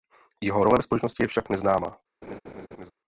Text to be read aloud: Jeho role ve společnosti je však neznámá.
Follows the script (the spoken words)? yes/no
yes